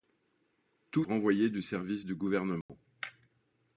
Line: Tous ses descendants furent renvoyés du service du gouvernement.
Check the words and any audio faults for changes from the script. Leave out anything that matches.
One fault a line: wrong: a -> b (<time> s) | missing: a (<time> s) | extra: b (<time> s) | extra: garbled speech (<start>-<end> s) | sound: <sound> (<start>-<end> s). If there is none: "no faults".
missing: ses descendants furent (1.1 s)
sound: dropout (2.6-2.7 s)